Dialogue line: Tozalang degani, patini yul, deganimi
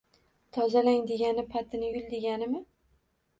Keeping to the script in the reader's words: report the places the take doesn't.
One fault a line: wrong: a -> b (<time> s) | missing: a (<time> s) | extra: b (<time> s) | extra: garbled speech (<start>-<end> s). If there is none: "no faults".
no faults